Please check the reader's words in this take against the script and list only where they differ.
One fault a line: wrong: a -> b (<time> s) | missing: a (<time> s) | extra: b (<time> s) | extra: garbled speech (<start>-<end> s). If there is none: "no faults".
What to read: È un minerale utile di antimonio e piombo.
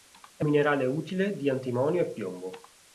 missing: un (0.5 s)